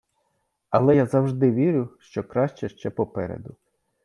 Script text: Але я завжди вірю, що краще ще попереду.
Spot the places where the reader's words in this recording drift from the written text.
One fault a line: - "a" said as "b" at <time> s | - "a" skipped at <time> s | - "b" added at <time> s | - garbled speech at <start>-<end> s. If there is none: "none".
none